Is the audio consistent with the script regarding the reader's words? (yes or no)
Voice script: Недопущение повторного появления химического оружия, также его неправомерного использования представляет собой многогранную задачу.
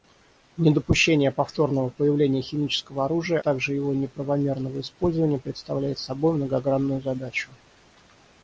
yes